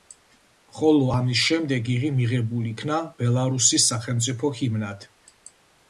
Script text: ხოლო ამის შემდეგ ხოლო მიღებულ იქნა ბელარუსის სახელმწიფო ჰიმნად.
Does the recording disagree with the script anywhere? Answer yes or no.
yes